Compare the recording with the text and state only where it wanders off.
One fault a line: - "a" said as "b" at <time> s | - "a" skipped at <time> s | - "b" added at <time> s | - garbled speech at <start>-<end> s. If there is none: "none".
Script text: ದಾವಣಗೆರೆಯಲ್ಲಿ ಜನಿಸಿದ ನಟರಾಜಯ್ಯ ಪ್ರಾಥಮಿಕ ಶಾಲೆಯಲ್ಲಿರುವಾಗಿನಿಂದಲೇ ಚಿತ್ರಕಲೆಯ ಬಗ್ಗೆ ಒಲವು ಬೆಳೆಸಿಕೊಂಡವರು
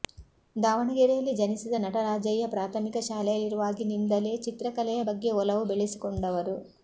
none